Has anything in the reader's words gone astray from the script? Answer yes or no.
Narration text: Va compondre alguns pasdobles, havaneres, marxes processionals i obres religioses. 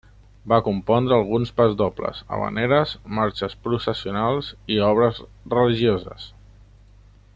no